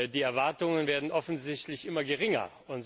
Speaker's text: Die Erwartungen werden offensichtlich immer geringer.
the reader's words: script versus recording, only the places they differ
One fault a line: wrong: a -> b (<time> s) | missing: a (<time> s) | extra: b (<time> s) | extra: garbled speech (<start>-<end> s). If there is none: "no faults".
no faults